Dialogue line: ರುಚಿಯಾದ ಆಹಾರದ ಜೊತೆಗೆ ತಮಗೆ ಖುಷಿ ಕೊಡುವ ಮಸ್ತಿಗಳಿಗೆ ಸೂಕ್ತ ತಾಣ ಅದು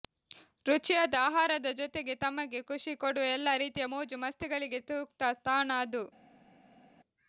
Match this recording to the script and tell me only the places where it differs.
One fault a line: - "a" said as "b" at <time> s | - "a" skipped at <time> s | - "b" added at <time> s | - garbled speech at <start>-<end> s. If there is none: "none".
- "ಎಲ್ಲಾ ರೀತಿಯ ಮೋಜು" added at 3.4 s